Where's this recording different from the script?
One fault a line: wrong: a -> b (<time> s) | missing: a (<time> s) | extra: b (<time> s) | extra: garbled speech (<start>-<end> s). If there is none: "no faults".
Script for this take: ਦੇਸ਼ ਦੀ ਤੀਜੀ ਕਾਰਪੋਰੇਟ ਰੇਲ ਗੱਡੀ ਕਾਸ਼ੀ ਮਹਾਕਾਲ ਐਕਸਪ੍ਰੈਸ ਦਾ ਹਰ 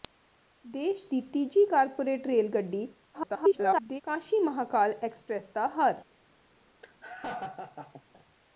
extra: garbled speech (3.1-4.0 s)